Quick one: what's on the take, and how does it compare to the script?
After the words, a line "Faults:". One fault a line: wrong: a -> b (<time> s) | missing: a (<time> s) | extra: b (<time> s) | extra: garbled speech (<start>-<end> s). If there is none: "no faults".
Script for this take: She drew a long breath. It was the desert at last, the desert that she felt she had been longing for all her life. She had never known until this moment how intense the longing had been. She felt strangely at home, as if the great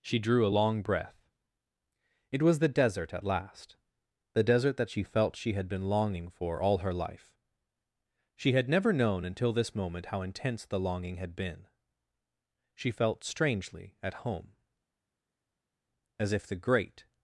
She drew a long breath. It was the desert at last, the desert that she felt she had been longing for all her life. She had never known until this moment how intense the longing had been. She felt strangely at home, as if the great
Faults:
no faults